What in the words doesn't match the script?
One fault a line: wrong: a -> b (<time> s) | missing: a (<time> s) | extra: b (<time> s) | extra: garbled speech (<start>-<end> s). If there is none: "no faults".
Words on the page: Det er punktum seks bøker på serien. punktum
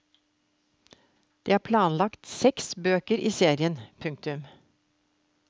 wrong: punktum -> planlagt (1.7 s)
wrong: på -> i (3.2 s)